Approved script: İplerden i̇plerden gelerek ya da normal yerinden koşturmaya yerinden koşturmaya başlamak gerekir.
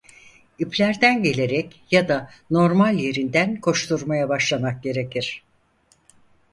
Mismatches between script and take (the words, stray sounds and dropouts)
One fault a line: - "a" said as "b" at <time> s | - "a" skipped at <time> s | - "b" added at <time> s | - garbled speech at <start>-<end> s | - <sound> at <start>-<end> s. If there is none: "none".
- "i̇plerden" skipped at 1.2 s
- "yerinden koşturmaya" skipped at 4.3 s